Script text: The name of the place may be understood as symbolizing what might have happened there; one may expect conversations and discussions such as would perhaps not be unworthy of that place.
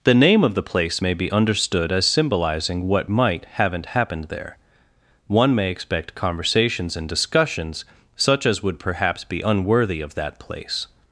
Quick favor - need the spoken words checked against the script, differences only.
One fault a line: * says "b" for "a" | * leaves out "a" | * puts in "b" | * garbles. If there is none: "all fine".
* says "haven't" for "have"
* leaves out "not"